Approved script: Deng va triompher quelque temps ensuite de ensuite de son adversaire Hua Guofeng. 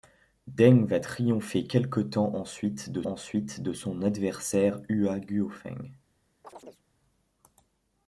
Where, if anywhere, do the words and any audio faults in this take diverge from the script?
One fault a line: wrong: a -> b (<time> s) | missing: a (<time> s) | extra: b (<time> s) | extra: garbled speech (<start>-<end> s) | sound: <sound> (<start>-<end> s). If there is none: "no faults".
sound: chirp (6.4-6.8 s)